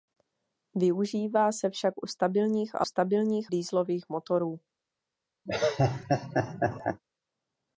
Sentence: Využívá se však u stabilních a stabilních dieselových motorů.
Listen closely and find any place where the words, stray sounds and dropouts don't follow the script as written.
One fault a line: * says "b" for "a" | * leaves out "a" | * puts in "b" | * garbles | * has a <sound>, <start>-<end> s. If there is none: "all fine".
* has a laugh, 5.5-7.0 s